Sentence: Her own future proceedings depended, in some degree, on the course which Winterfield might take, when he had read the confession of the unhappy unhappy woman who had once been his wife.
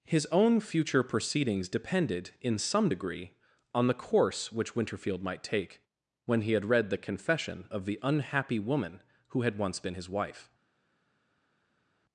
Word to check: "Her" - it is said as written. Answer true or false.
false